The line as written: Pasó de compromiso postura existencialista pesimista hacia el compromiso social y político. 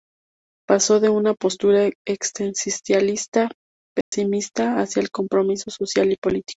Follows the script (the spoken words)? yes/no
no